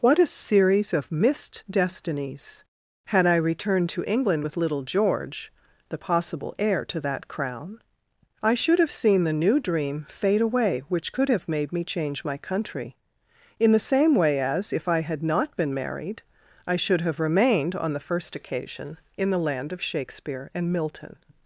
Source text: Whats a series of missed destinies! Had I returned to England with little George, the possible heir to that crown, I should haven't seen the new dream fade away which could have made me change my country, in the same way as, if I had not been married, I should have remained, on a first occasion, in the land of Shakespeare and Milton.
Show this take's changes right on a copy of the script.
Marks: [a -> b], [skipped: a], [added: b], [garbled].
[Whats -> What] a series of missed destinies! Had I returned to England with little George, the possible heir to that crown, I should [haven't -> have] seen the new dream fade away which could have made me change my country, in the same way as, if I had not been married, I should have remained, on [a -> the] first occasion, in the land of Shakespeare and Milton.